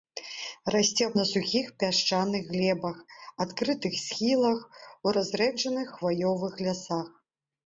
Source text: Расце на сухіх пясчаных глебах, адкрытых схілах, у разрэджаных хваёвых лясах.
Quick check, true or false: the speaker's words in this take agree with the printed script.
true